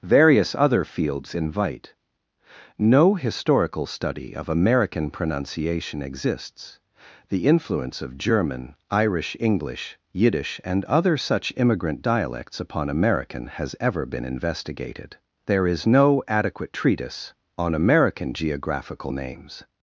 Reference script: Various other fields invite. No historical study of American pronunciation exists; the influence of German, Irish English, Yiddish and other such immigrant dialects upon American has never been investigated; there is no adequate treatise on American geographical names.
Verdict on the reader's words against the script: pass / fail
fail